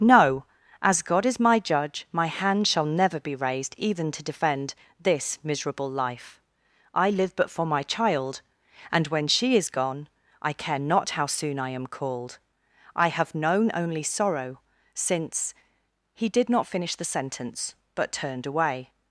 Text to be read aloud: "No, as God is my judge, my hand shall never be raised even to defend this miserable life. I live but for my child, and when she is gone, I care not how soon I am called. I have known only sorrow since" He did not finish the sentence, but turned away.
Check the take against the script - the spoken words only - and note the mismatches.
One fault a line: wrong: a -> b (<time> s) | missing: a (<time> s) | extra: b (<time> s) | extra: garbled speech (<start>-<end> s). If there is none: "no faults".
no faults